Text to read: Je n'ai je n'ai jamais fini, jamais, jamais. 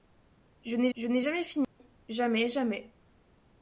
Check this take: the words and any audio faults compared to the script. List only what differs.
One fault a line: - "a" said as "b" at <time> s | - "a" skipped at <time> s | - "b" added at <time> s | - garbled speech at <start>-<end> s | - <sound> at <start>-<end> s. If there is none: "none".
- dropout at 1.6-1.8 s